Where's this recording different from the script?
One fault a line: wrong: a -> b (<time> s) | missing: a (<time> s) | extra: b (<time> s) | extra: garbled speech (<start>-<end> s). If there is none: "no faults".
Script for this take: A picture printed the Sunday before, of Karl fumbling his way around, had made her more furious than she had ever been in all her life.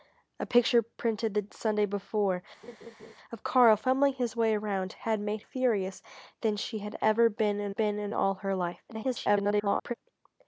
missing: her more (5.4 s)
extra: been in (7.7 s)
extra: garbled speech (8.9-9.9 s)